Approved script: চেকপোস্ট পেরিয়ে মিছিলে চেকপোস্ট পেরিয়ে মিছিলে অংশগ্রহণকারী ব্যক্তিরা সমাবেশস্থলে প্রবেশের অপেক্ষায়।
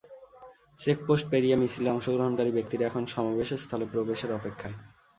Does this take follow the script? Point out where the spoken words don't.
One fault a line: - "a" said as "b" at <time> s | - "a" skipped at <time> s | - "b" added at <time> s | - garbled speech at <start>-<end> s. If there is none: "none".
- "চেকপোস্ট পেরিয়ে মিছিলে" skipped at 1.9 s
- "এখন" added at 2.9 s